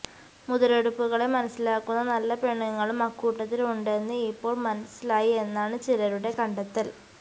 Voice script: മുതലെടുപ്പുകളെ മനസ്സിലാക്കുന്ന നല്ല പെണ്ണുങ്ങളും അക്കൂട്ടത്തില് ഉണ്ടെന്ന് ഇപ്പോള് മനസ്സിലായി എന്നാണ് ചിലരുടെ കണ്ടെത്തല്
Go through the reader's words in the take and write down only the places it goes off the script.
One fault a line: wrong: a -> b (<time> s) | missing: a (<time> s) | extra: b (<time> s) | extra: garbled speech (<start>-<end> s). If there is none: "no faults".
no faults